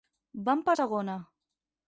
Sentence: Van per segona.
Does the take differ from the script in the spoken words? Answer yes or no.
no